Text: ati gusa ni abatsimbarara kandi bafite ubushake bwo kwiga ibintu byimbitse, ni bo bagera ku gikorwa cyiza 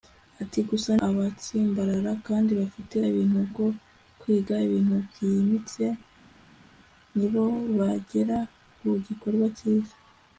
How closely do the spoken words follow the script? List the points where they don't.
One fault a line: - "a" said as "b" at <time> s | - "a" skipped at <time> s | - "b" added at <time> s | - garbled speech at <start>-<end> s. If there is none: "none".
- "ni" skipped at 0.9 s
- "ubushake" said as "ibintu" at 3.1 s